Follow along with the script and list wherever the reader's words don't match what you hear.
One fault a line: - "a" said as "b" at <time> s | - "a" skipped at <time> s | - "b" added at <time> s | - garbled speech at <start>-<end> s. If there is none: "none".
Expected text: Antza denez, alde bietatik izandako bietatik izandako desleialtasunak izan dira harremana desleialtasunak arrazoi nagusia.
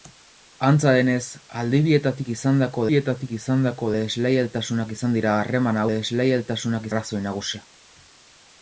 none